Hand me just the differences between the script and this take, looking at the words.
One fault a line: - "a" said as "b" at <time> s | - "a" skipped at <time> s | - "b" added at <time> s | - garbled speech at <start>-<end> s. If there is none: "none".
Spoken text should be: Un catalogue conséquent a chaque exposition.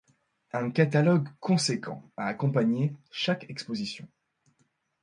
- "accompagné" added at 2.3 s